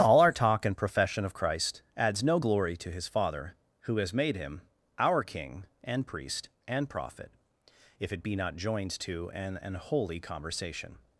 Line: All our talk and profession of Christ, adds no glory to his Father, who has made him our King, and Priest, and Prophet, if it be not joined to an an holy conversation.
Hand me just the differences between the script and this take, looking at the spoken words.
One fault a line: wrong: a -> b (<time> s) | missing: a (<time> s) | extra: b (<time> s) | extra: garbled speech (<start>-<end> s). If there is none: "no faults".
no faults